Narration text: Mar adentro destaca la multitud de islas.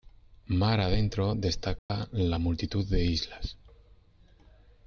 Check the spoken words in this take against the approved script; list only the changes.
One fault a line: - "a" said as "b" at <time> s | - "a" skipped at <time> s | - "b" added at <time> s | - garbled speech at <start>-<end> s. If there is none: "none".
none